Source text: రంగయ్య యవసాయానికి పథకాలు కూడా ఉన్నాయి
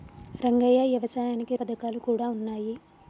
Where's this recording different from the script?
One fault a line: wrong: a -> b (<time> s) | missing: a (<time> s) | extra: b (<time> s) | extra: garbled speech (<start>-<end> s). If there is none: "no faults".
no faults